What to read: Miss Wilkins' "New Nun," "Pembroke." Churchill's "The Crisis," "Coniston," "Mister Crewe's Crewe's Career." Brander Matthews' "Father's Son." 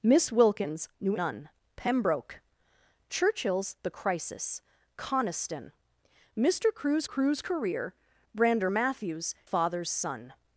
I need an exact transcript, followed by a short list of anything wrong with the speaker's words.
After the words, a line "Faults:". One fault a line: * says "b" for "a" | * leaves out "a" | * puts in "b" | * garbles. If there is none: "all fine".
Miss Wilkins' "New Nun," "Pembroke." Churchill's "The Crisis," "Coniston," "Mister Crewe's Crewe's Career." Brander Matthews' "Father's Son."
Faults:
all fine